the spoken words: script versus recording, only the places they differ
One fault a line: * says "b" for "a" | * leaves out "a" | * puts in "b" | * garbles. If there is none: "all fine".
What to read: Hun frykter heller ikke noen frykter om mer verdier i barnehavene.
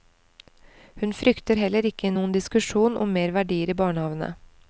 * says "diskusjon" for "frykter"